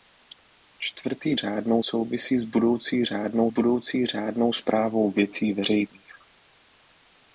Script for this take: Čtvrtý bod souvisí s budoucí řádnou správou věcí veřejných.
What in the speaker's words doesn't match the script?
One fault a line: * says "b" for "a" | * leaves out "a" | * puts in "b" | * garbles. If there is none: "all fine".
* says "řádnou" for "bod"
* puts in "budoucí řádnou"